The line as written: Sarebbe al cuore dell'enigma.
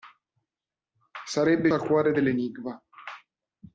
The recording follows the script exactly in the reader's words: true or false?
true